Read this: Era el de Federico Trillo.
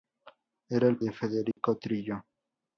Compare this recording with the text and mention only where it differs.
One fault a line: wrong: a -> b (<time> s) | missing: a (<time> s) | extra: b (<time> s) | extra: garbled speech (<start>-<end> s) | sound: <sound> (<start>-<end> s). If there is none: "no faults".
sound: dropout (1.5-1.6 s)